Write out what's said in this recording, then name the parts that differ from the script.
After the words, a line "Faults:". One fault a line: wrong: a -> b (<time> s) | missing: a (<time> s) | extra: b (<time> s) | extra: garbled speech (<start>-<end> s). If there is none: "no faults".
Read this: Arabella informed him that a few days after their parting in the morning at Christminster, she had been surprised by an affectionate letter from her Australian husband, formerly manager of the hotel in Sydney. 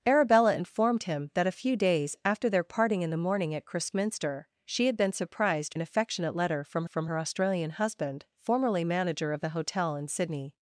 Arabella informed him that a few days after their parting in the morning at Christminster, she had been surprised an affectionate letter from from her Australian husband, formerly manager of the hotel in Sydney.
Faults:
missing: by (5.8 s)
extra: from (6.8 s)